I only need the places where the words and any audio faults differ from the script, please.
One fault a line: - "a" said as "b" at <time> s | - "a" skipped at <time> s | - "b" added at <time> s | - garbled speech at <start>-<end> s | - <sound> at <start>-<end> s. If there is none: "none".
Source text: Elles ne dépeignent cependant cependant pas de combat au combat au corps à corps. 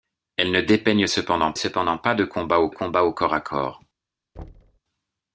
- thud at 4.4-4.8 s